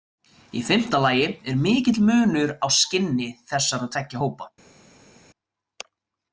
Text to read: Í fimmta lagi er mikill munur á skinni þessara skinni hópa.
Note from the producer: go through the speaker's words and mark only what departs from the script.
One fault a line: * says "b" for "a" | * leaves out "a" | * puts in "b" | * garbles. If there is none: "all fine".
* says "tveggja" for "skinni"